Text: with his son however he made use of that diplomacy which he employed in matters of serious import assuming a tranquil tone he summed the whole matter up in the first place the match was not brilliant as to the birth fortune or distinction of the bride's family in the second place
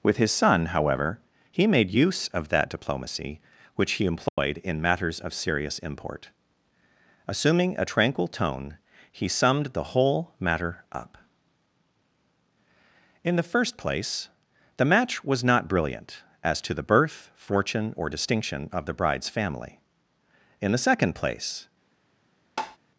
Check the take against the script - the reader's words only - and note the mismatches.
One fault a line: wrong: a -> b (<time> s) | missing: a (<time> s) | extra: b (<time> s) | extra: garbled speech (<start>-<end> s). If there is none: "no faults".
no faults